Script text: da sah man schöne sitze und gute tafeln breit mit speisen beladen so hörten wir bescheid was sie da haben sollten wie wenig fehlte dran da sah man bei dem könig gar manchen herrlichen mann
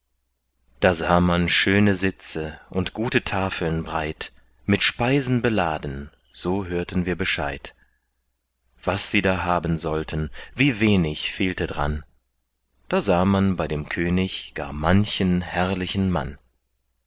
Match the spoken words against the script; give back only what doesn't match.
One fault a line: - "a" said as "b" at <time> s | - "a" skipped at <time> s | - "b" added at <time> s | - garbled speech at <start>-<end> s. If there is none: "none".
none